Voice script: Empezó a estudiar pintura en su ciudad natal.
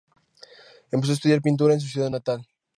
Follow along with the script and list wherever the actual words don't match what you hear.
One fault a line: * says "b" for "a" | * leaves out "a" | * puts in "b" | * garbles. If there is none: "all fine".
all fine